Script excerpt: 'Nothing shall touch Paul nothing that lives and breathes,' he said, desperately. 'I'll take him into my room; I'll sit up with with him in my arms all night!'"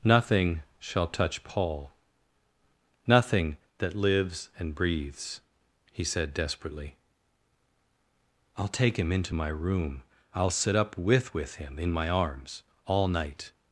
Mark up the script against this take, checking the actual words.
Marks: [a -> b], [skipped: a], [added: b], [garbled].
'Nothing shall touch Paul nothing that lives and breathes,' he said, desperately. 'I'll take him into my room; I'll sit up with with him in my arms all night!'"